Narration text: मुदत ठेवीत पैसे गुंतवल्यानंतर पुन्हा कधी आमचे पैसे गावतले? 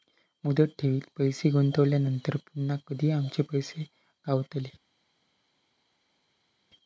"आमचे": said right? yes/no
yes